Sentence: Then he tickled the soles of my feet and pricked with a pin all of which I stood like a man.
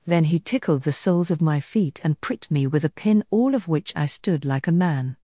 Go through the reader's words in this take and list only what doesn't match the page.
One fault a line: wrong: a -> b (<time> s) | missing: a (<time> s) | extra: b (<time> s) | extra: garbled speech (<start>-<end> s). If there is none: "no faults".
extra: me (2.5 s)